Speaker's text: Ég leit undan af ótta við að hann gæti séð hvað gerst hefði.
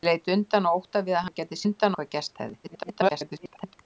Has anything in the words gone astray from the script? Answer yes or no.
yes